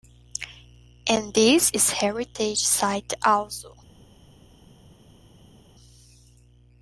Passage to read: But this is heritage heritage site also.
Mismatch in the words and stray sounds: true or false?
true